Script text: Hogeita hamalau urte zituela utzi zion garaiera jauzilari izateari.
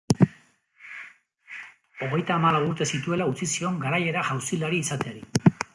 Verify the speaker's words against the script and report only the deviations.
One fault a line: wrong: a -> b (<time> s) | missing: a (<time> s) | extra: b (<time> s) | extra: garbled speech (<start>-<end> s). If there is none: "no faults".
no faults